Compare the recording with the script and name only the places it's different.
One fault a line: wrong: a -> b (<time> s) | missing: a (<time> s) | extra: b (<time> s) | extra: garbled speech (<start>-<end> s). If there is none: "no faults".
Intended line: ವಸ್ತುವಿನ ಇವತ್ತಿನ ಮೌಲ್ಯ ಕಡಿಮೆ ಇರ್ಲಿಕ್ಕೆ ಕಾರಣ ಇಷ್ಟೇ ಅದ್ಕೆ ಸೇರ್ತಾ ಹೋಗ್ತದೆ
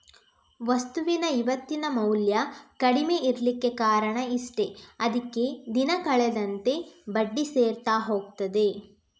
extra: ದಿನ ಕಳೆದಂತೆ ಬಡ್ಡಿ (5.7 s)